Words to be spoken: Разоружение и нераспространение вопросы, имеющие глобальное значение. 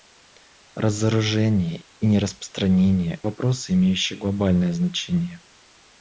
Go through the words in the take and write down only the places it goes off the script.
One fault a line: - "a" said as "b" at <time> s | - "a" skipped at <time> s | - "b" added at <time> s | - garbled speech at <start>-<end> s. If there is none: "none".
none